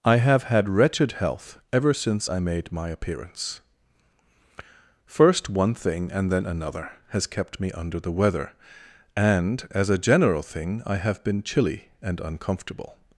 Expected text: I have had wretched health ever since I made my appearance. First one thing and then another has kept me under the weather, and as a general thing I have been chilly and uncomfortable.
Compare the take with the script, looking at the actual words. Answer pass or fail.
pass